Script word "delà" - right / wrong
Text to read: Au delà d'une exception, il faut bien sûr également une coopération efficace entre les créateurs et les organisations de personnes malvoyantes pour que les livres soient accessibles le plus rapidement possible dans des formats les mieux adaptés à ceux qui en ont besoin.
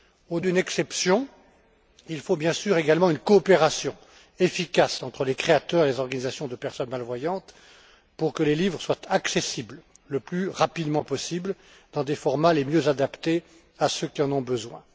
wrong